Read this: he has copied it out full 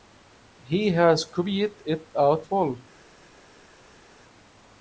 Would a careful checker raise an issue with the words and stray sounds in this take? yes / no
no